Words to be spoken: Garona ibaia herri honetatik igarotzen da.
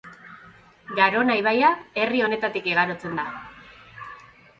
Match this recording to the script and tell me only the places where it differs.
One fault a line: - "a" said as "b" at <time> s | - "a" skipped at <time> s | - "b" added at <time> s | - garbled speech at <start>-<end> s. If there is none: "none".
none